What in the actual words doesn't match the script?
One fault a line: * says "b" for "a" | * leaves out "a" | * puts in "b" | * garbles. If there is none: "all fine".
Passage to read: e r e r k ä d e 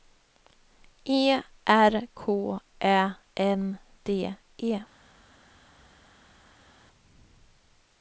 * leaves out "e r"
* puts in "n"